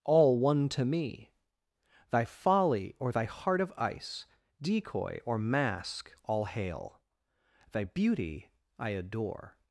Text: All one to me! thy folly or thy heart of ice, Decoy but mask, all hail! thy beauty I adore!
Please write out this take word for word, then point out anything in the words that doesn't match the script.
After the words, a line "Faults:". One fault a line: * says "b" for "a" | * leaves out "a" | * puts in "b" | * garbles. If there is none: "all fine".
All one to me! thy folly or thy heart of ice, Decoy or mask, all hail! thy beauty I adore!
Faults:
* says "or" for "but"